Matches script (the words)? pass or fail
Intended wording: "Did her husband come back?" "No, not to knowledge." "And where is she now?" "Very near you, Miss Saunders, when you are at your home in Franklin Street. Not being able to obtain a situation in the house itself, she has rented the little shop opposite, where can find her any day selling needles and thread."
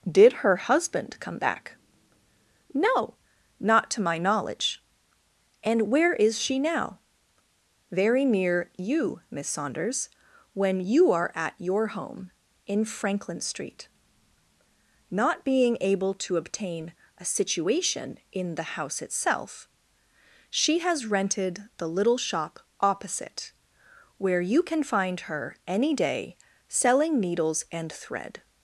fail